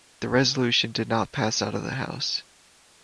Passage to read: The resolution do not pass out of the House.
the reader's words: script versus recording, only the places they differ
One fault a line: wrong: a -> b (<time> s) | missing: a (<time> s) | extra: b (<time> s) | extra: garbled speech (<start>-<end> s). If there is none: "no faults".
wrong: do -> did (0.9 s)